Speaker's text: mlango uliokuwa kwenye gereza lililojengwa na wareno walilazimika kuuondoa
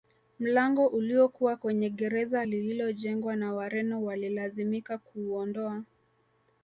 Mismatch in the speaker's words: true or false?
false